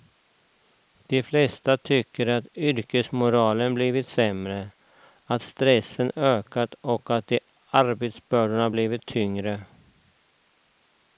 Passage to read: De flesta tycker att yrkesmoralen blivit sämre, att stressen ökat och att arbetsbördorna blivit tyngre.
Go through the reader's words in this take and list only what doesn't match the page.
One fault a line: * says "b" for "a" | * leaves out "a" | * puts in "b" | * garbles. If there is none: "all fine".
all fine